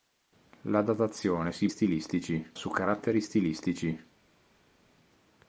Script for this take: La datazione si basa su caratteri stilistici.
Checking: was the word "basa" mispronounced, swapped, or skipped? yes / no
yes